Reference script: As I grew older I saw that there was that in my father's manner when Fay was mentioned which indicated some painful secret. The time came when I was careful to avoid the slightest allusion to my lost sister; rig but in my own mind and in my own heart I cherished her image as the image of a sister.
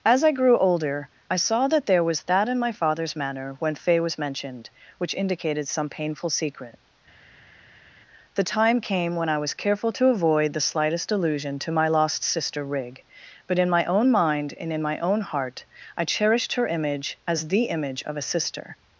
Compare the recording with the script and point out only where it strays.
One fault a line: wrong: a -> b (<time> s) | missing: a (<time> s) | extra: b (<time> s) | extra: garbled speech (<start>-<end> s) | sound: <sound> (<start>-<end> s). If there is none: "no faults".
no faults